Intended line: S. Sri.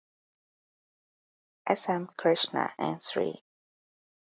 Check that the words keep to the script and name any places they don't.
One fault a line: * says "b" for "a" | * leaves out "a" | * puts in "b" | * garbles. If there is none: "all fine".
* puts in "M Krishna and"